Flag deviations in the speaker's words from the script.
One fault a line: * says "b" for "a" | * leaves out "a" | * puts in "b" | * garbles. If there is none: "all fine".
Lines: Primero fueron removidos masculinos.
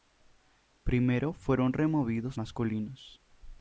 all fine